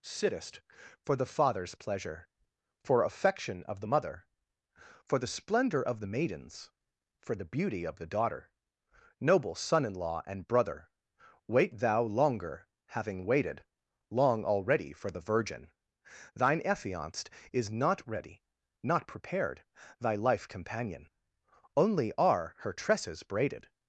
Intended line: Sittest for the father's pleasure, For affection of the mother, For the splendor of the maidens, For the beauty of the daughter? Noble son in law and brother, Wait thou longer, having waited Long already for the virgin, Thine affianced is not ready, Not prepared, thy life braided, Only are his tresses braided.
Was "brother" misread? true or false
false